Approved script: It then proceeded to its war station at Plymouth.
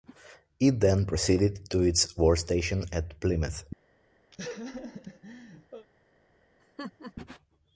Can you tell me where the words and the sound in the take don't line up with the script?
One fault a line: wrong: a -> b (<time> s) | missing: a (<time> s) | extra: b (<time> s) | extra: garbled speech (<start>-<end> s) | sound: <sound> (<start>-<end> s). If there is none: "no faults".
sound: laugh (4.3-5.9 s)
sound: laugh (6.6-7.1 s)